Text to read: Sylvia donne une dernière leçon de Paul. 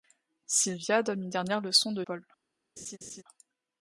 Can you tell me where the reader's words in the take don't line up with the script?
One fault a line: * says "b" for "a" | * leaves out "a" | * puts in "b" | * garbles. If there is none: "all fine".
all fine